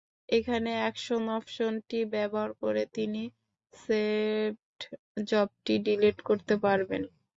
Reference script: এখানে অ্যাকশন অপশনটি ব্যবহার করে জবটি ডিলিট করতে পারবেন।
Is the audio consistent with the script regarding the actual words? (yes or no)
no